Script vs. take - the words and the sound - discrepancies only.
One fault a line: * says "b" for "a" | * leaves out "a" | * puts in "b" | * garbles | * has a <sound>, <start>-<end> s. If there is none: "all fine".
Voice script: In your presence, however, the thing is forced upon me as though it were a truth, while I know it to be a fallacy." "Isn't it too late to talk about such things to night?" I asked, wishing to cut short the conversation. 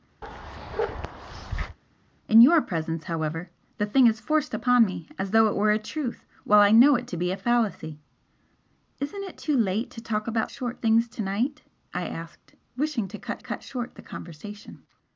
* has a bark, 0.2-1.8 s
* says "short" for "such"
* puts in "cut"